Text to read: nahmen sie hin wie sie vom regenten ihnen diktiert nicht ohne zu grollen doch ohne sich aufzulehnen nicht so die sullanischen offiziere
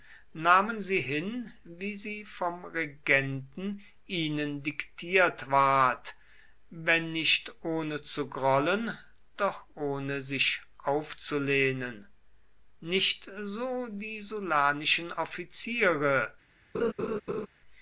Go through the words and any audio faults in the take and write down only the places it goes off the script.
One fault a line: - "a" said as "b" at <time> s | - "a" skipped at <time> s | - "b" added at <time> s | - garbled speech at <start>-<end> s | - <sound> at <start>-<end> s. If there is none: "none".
- "ward wenn" added at 5.5 s
- laugh at 16.7-17.5 s